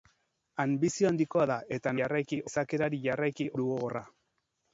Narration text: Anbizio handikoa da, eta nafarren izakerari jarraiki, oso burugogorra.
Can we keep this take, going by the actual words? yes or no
no